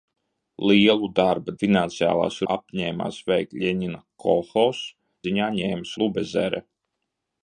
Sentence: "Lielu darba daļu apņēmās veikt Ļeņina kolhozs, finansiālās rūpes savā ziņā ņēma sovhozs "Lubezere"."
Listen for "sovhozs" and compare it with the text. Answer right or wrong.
wrong